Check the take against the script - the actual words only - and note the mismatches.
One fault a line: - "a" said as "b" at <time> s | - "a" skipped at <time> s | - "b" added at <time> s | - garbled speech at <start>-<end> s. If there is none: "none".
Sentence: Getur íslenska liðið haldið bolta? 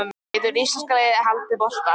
none